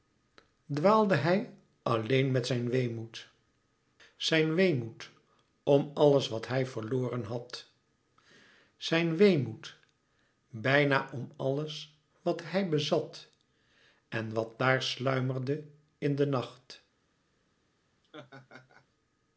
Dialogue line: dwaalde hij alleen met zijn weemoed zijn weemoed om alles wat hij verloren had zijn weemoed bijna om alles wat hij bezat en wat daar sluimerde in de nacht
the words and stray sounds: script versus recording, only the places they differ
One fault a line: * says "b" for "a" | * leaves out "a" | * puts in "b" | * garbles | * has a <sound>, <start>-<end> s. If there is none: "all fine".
* has a laugh, 18.0-18.9 s